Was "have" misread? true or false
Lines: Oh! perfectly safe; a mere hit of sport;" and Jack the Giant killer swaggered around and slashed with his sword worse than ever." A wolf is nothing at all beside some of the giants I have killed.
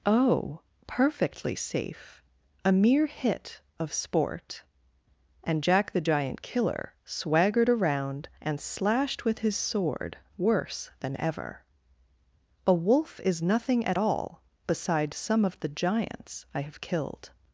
false